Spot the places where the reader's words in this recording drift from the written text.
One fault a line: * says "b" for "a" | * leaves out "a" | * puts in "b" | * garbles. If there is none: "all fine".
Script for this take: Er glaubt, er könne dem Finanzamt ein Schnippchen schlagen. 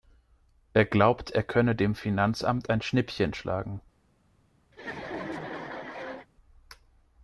all fine